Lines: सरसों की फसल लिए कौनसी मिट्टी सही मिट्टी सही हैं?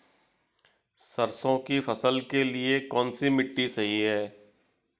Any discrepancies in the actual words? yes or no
yes